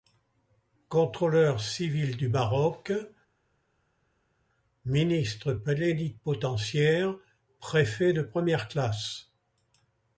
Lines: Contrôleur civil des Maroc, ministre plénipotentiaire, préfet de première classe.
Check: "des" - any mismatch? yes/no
yes